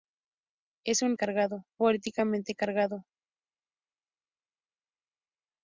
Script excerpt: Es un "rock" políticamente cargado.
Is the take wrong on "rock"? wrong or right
wrong